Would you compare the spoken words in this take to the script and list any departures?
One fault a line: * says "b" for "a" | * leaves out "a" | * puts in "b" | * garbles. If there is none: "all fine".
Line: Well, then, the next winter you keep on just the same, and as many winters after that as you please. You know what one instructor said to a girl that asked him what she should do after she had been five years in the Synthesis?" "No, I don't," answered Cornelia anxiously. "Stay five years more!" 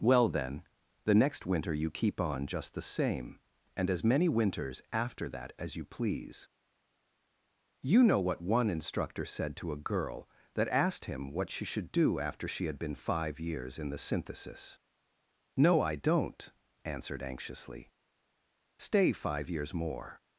* leaves out "Cornelia"